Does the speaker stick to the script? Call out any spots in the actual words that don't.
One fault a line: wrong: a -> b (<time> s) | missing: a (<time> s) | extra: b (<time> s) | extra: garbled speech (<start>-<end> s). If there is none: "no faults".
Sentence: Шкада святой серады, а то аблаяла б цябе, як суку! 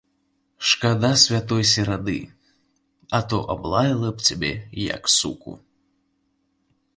no faults